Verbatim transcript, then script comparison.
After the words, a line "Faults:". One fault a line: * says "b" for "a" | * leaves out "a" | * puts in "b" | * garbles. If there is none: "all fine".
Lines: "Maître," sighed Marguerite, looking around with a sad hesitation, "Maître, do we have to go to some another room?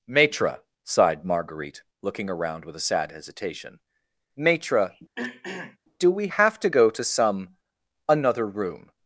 "Maître," sighed Marguerite, looking around with a sad hesitation, "Maître, do we have to go to some another room?
Faults:
all fine